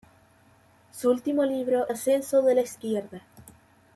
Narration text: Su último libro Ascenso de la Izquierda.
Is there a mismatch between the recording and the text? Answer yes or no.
no